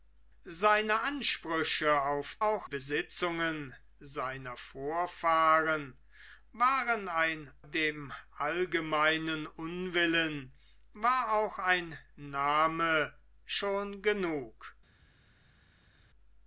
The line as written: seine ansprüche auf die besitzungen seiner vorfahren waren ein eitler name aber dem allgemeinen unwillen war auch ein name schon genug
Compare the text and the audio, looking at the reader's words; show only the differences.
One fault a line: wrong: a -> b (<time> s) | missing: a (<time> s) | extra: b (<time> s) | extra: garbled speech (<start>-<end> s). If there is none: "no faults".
wrong: die -> auch (2.4 s)
missing: eitler name aber (7.5 s)